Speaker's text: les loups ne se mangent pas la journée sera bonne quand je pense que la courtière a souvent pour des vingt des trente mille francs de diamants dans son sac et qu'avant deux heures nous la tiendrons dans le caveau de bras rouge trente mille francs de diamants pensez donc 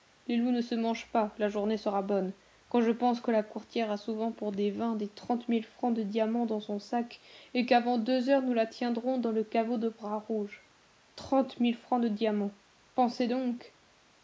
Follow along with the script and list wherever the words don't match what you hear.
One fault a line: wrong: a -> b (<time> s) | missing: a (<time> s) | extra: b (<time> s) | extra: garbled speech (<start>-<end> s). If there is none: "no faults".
no faults